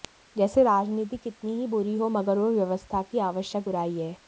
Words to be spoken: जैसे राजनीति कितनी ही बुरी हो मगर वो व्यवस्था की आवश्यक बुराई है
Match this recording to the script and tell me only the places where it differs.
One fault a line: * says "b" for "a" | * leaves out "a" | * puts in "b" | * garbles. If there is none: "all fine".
all fine